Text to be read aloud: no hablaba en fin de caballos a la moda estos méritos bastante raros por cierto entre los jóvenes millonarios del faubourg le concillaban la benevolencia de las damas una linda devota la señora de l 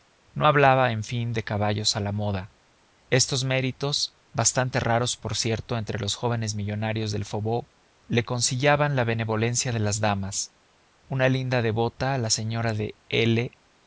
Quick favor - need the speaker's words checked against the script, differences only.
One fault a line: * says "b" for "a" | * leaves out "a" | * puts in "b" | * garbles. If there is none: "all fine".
all fine